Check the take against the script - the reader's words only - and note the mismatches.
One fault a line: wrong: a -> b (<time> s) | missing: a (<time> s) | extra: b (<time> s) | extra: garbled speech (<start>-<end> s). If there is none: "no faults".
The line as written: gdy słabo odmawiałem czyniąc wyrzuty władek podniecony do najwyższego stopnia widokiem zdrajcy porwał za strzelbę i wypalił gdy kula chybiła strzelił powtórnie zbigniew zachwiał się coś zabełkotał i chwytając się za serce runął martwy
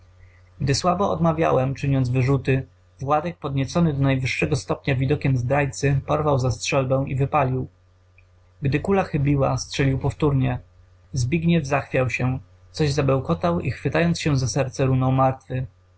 no faults